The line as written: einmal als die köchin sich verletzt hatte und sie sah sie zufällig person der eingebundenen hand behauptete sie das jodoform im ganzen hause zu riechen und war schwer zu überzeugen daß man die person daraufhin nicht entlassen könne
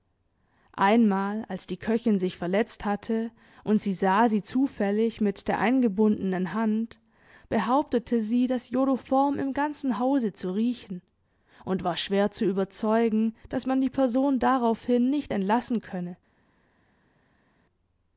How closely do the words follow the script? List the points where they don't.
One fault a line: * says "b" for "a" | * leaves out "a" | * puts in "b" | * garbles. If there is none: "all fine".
* says "mit" for "person"